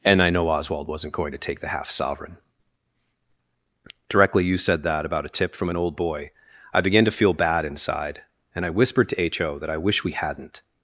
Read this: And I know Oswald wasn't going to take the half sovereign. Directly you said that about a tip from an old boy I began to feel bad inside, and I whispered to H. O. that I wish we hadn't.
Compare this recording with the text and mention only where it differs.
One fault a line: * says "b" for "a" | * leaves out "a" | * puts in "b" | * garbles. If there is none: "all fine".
all fine